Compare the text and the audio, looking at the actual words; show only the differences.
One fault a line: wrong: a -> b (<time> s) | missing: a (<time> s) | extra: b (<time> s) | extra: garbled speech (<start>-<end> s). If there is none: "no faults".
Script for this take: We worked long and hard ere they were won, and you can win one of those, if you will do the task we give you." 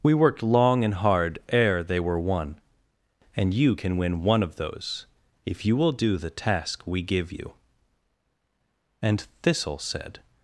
extra: And Thistle said (9.0 s)